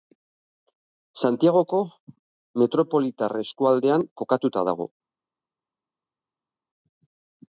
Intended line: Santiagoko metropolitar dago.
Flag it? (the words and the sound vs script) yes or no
yes